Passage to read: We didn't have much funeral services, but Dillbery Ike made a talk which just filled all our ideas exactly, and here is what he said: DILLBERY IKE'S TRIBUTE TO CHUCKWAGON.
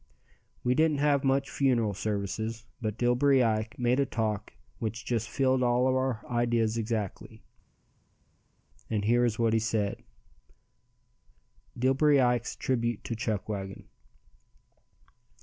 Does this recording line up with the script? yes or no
yes